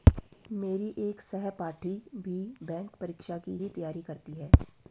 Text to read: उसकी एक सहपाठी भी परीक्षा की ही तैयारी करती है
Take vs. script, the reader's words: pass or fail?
fail